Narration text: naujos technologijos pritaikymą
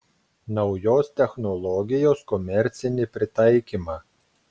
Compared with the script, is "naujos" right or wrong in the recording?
right